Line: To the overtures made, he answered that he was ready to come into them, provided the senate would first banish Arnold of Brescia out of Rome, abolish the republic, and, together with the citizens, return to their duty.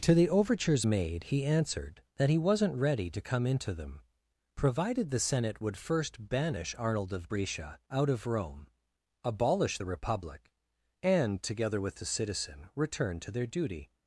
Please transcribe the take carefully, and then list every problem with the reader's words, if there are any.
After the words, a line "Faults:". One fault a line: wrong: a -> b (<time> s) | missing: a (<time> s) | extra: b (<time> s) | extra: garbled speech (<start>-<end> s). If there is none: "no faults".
To the overtures made, he answered that he wasn't ready to come into them, provided the senate would first banish Arnold of Brescia out of Rome, abolish the republic, and, together with the citizen, return to their duty.
Faults:
wrong: was -> wasn't (2.4 s)
wrong: citizens -> citizen (12.1 s)